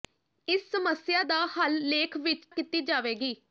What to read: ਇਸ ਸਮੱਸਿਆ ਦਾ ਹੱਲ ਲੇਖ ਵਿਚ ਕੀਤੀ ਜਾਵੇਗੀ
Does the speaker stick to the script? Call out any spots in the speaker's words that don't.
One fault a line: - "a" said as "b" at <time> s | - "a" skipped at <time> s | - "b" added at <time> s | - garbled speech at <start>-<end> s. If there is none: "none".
none